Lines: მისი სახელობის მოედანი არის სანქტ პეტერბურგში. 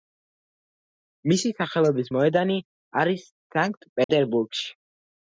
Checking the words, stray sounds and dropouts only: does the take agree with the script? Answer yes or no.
no